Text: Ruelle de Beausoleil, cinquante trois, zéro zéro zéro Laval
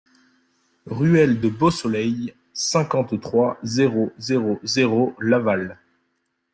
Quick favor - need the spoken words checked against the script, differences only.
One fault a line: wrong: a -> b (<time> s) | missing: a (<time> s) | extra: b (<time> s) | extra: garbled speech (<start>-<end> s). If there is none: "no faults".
no faults